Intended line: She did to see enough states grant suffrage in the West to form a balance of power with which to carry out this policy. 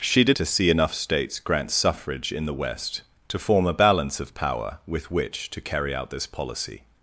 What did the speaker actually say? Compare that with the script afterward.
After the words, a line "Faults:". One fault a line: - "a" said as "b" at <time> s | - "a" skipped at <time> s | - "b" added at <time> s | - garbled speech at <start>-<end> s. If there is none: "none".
She did to see enough states grant suffrage in the West to form a balance of power with which to carry out this policy.
Faults:
none